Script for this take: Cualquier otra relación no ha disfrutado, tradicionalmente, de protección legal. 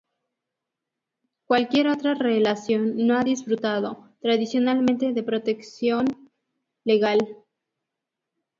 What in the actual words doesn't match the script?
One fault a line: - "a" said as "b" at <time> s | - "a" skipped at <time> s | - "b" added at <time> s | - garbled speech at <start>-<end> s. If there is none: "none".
none